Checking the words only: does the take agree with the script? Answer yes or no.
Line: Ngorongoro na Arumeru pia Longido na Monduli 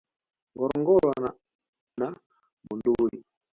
no